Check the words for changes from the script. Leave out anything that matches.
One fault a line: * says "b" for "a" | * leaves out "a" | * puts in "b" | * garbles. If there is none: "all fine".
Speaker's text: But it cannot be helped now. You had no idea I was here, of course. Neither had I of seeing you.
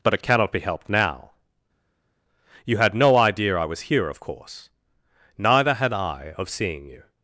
all fine